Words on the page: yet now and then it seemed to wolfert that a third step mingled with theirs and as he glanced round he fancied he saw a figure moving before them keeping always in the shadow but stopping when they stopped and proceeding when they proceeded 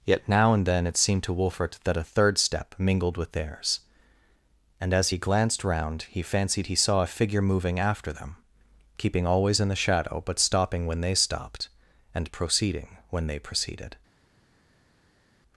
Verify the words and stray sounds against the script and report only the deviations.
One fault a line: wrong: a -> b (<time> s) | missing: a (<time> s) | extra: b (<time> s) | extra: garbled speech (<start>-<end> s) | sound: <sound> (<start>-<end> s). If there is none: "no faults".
wrong: before -> after (7.8 s)